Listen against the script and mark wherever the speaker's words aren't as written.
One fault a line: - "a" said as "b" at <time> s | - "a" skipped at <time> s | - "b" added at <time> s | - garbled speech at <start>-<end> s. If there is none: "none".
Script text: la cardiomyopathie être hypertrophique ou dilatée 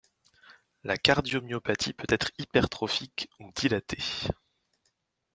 - "peut" added at 1.9 s